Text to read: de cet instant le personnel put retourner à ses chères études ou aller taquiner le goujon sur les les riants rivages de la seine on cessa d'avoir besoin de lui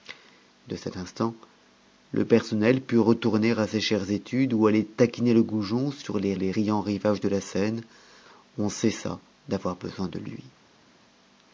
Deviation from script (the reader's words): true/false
false